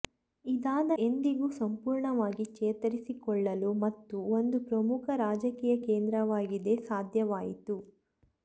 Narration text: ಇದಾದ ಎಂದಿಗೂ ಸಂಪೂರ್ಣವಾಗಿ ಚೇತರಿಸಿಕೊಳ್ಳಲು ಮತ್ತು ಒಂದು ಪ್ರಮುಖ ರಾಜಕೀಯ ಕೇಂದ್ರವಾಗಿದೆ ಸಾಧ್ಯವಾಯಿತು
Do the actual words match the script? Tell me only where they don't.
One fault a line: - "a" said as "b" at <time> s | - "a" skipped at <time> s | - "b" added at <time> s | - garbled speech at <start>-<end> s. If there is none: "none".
none